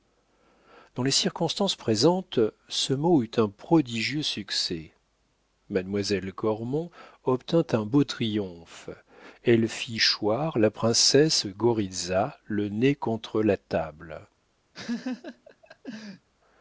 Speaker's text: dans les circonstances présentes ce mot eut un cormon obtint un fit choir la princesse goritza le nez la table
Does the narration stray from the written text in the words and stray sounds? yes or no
yes